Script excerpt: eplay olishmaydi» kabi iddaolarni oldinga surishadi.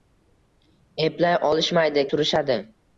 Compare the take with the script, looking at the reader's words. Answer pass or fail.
fail